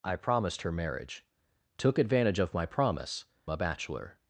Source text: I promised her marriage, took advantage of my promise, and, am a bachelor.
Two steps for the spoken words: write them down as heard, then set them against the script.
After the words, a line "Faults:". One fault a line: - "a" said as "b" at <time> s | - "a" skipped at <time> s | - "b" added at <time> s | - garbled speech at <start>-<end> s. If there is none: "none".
I promised her marriage, took advantage of my promise, a bachelor.
Faults:
- "and am" skipped at 3.2 s